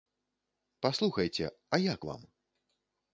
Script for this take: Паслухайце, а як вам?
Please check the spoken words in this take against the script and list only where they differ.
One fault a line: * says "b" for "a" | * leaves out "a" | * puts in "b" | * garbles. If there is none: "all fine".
all fine